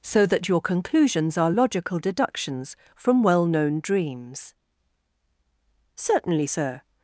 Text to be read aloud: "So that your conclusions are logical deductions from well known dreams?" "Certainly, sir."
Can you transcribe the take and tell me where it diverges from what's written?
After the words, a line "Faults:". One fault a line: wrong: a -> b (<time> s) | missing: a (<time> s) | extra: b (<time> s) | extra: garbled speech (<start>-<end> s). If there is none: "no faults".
"So that your conclusions are logical deductions from well known dreams?" "Certainly, sir."
Faults:
no faults